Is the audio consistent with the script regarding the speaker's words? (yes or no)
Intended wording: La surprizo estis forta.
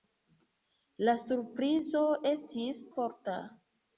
yes